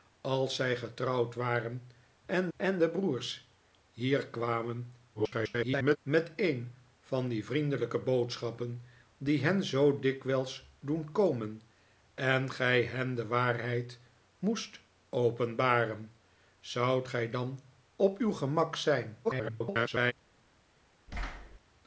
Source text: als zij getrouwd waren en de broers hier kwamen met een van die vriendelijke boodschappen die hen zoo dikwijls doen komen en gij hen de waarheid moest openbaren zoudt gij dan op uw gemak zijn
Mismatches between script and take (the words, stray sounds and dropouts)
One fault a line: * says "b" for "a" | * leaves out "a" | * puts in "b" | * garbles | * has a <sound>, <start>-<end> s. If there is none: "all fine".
* puts in "en"
* garbles
* garbles
* has a thud, 21.1-21.6 s